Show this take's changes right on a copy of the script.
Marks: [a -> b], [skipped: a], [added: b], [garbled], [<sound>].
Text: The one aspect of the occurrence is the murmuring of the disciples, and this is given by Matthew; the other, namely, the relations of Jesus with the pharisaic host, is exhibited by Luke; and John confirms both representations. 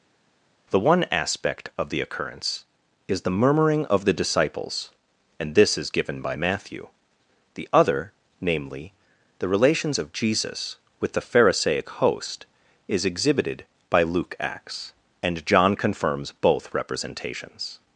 The one aspect of the occurrence is the murmuring of the disciples, and this is given by Matthew; the other, namely, the relations of Jesus with the pharisaic host, is exhibited by Luke; [added: acts] and John confirms both representations.